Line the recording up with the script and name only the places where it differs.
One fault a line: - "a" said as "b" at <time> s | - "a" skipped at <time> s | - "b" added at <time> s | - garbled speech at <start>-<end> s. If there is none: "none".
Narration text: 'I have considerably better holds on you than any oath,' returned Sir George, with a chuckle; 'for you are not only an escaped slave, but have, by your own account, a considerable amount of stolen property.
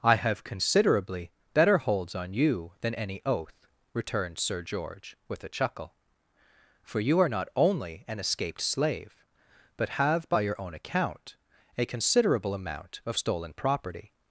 none